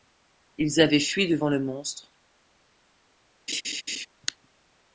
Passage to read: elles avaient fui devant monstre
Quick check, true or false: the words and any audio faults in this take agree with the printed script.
false